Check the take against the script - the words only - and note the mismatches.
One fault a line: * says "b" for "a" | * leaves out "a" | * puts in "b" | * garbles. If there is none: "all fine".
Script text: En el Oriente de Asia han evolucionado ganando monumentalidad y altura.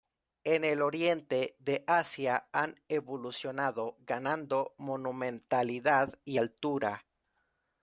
all fine